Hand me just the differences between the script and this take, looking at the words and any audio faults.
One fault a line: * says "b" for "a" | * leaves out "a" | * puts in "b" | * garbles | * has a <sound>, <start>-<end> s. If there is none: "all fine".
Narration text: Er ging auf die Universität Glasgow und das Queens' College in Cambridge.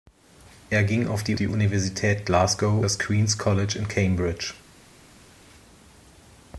* puts in "die"
* leaves out "und"